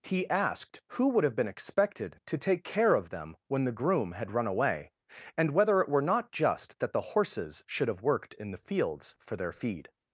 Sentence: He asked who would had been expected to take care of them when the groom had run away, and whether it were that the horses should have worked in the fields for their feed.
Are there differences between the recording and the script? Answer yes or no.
yes